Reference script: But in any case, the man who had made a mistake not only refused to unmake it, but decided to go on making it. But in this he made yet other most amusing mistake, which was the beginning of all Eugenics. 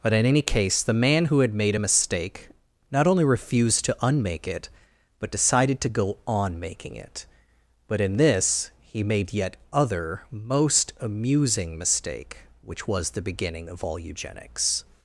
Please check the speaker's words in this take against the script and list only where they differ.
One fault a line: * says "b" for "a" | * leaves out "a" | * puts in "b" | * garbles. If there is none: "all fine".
all fine